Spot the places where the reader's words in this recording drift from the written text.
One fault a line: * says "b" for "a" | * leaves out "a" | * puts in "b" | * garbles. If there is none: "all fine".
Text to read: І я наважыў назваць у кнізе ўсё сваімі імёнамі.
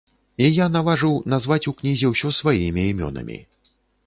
all fine